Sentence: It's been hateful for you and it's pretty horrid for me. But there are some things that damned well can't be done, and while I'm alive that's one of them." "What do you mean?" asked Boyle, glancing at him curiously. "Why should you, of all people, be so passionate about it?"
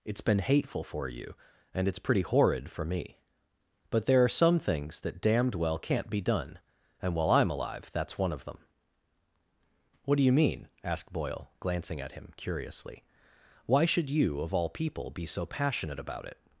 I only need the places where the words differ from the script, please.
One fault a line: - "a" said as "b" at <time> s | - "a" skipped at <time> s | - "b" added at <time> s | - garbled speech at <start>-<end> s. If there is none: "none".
none